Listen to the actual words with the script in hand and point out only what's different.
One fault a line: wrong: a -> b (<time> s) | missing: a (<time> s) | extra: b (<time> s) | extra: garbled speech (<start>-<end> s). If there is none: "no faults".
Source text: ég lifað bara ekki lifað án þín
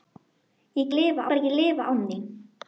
no faults